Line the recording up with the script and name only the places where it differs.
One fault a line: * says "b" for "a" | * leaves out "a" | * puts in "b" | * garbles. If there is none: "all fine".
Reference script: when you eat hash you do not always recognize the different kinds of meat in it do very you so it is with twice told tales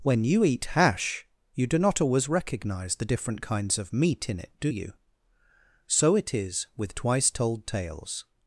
* leaves out "very"